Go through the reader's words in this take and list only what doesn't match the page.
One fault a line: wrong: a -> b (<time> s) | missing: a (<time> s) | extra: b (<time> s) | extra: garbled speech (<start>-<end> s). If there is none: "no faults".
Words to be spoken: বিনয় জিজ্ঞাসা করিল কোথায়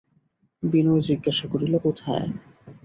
no faults